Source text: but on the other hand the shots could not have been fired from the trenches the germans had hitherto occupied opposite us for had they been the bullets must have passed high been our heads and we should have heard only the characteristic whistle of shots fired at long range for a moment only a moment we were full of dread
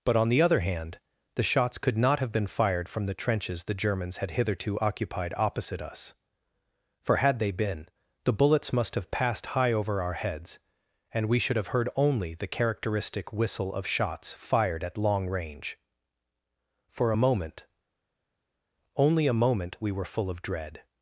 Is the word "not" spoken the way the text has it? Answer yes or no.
yes